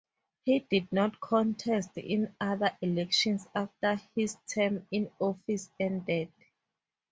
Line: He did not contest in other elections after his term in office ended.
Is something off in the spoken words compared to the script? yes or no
no